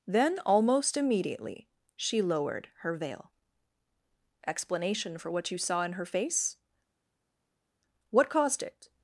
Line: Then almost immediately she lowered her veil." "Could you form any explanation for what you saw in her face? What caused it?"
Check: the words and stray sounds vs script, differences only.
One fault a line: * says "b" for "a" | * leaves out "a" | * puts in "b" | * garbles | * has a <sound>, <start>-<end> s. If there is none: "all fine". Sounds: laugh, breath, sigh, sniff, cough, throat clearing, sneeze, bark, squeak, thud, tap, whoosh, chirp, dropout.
* leaves out "Could you form any"